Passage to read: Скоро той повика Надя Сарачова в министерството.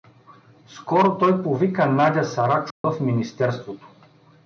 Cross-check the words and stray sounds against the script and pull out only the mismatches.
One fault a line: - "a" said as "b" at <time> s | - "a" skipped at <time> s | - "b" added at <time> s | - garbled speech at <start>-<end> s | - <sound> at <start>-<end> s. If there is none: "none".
- dropout at 2.7-2.8 s